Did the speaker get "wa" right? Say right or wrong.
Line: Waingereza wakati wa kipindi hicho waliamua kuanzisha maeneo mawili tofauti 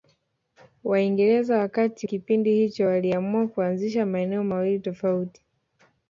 wrong